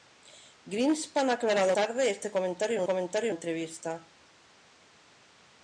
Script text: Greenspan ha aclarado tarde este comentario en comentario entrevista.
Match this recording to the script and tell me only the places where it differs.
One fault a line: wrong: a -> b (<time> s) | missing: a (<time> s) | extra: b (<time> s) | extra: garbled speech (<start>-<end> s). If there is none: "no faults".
no faults